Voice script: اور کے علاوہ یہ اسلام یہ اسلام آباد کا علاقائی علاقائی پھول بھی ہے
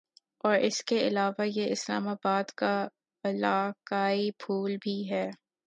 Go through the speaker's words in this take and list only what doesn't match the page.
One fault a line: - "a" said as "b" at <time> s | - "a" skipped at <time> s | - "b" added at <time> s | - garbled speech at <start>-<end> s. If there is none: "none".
- "اس" added at 0.6 s
- "یہ اسلام" skipped at 2.1 s
- "علاقائی" skipped at 4.3 s